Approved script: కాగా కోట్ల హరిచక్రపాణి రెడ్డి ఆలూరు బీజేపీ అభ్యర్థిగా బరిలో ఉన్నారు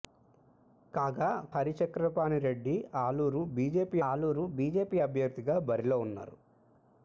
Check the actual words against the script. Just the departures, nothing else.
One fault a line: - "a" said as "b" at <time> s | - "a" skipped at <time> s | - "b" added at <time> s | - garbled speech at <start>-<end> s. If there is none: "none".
- "కోట్ల" skipped at 1.3 s
- "ఆలూరు బీజేపీ" added at 4.1 s